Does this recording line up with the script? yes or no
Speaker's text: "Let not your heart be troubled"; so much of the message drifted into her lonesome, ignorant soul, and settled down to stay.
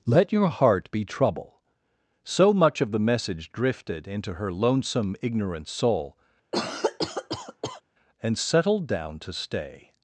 no